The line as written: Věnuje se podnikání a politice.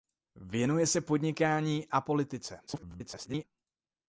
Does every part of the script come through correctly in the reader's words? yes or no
no